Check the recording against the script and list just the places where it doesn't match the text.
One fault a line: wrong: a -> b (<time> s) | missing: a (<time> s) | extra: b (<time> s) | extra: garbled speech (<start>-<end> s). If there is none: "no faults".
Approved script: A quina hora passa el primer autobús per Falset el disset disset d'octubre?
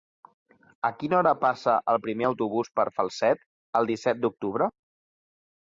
missing: disset (4.2 s)